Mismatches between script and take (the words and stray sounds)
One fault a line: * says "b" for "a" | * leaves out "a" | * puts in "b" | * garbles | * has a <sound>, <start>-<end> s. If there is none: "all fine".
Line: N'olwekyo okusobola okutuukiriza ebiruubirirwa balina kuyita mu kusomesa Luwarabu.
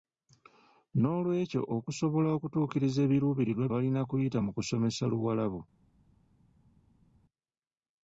all fine